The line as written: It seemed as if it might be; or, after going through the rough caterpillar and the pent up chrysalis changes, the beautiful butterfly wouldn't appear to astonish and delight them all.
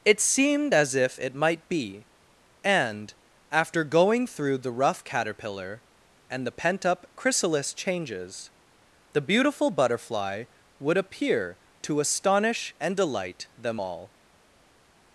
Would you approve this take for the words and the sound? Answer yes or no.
no